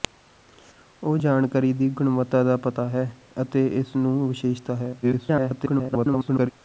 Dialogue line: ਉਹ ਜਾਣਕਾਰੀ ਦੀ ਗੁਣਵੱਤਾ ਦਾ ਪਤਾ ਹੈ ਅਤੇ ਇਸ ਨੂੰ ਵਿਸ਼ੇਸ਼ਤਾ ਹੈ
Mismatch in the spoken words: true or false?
true